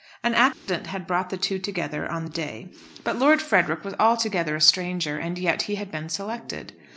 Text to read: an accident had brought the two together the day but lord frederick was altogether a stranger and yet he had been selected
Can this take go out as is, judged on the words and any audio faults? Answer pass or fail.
fail